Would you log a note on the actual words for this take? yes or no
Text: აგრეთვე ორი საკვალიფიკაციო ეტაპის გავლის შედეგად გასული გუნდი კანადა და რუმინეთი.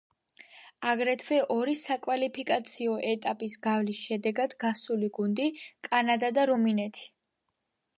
no